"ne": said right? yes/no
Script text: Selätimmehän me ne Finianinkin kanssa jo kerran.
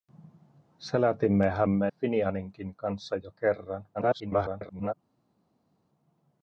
no